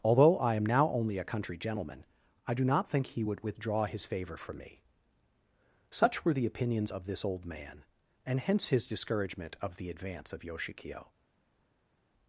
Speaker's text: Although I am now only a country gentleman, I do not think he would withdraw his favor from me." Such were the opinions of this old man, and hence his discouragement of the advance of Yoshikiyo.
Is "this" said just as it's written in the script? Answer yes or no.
yes